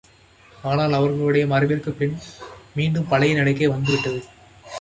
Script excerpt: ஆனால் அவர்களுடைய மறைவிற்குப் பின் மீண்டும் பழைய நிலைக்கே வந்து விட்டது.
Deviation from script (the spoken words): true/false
false